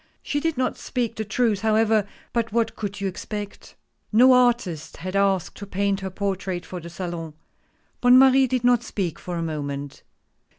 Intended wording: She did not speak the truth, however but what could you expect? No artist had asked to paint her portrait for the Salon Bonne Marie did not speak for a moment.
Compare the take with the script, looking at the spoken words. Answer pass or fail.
pass